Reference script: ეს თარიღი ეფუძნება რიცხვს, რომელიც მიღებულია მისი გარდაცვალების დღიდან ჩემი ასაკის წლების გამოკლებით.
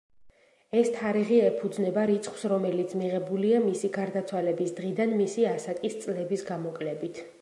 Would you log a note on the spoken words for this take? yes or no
yes